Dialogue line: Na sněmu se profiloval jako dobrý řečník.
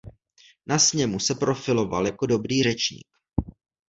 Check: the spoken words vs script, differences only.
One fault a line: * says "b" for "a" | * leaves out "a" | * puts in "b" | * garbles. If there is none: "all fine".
all fine